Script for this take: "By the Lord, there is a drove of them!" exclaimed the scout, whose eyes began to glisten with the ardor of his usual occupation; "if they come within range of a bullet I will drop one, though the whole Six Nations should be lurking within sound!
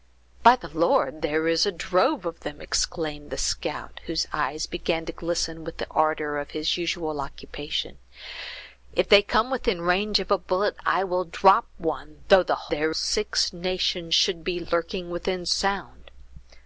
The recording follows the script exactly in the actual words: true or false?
false